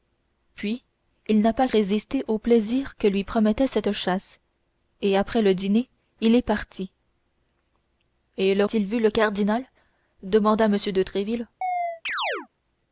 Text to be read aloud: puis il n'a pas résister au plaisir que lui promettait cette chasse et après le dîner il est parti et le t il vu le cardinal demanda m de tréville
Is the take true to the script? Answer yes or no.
yes